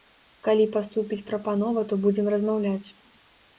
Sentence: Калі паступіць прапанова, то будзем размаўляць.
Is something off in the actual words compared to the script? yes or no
no